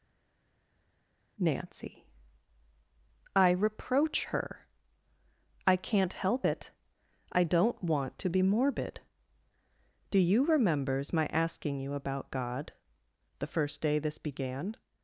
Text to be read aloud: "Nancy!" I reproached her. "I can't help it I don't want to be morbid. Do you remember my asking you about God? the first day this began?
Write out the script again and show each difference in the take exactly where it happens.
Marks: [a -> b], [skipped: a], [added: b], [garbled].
"Nancy!" I [reproached -> reproach] her. "I can't help it I don't want to be morbid. Do you [remember -> remembers] my asking you about God? the first day this began?